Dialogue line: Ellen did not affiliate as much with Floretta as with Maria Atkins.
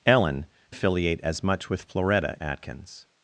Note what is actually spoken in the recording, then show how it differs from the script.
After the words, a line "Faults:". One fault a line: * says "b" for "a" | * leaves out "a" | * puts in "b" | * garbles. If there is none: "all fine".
Ellen affiliate as much with Floretta Atkins.
Faults:
* leaves out "did not"
* leaves out "as with Maria"